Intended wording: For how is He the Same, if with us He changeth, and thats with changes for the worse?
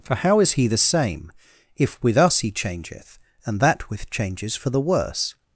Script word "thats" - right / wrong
wrong